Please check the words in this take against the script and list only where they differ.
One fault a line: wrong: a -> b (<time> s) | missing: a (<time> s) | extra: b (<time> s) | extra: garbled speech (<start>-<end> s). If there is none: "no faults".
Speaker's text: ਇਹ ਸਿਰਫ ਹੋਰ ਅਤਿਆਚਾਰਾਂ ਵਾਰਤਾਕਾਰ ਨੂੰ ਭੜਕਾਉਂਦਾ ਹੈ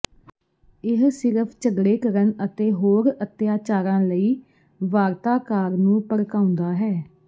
extra: ਝਗੜੇ ਕਰਨ ਅਤੇ (1.6 s)
extra: ਲਈ (4.0 s)